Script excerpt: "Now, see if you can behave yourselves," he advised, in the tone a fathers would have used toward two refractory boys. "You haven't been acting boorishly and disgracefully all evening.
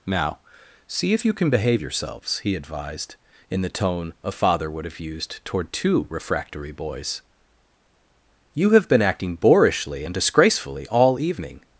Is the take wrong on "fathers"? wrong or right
wrong